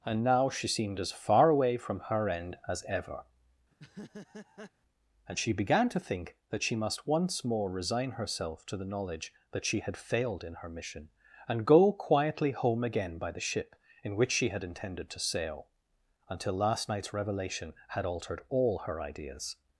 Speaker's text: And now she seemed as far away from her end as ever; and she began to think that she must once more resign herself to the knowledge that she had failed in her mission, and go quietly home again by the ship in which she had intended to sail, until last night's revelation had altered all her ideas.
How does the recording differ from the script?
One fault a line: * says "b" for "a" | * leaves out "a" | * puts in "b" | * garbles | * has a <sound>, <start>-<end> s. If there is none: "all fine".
* has a laugh, 3.7-4.7 s